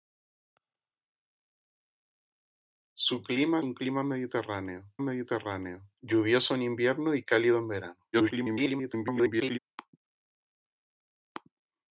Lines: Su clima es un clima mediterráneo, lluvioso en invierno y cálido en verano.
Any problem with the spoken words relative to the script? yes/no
yes